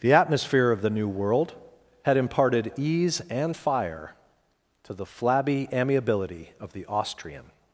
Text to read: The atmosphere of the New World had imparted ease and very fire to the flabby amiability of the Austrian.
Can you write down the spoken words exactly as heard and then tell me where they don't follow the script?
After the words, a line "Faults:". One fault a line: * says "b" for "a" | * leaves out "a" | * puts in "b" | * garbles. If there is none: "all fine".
The atmosphere of the New World had imparted ease and fire to the flabby amiability of the Austrian.
Faults:
* leaves out "very"